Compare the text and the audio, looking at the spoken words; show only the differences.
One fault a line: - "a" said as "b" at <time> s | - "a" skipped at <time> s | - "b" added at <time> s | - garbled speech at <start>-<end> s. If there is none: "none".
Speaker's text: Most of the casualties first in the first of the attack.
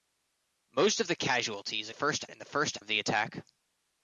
none